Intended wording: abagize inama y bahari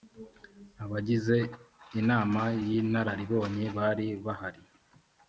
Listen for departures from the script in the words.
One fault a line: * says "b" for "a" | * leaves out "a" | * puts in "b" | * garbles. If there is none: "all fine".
* puts in "inararibonye bari"